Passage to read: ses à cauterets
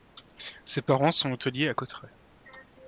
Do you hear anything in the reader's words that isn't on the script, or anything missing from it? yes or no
yes